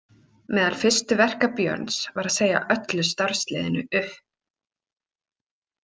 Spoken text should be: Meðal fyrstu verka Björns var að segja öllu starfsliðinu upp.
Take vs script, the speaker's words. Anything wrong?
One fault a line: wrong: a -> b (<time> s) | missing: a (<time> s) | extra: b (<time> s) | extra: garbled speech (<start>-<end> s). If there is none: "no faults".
no faults